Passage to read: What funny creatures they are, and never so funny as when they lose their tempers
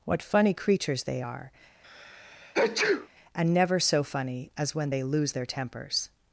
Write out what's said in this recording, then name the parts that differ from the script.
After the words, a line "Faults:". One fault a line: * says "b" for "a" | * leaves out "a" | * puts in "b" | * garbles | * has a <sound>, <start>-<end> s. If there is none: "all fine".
What funny creatures they are, and never so funny as when they lose their tempers
Faults:
* has a sneeze, 1.8-3.1 s